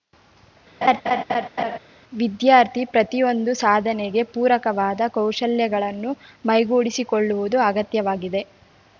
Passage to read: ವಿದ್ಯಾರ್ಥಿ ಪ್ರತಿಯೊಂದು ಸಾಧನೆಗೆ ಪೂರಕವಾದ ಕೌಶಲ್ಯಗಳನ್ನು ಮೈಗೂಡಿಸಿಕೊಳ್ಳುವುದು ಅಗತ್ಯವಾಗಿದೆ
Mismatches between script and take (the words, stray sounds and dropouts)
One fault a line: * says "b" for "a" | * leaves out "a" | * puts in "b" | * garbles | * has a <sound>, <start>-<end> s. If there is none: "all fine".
* has a laugh, 0.8-1.8 s